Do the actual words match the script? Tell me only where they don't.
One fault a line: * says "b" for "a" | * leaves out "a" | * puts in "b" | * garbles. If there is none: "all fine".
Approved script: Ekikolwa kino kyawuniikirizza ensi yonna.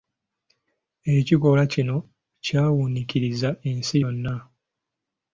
all fine